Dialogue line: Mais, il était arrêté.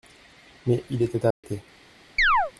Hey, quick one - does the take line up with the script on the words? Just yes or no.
yes